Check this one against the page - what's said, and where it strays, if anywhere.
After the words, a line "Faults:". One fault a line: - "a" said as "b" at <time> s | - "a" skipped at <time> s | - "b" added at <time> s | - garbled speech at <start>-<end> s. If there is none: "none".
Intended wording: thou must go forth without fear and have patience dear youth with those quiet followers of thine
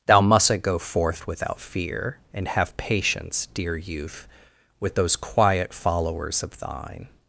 thou mustn't go forth without fear and have patience dear youth with those quiet followers of thine
Faults:
- "must" said as "mustn't" at 0.2 s